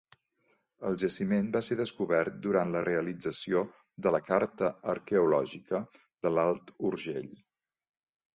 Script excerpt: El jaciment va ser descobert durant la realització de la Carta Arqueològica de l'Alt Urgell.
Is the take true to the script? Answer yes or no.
yes